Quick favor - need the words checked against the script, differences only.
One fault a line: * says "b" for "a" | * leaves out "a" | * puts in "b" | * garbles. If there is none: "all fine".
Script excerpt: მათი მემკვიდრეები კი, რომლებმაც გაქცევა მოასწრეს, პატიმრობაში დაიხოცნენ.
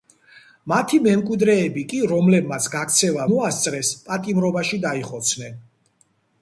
all fine